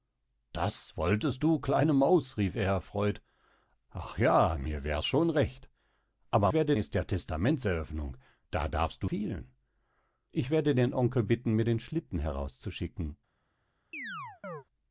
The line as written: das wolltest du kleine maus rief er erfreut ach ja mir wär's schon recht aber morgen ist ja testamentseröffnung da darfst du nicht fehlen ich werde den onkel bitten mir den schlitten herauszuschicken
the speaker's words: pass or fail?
fail